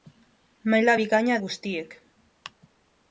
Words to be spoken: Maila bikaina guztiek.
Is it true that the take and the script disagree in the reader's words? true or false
false